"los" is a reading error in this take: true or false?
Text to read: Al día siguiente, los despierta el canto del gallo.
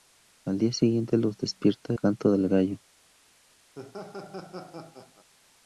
false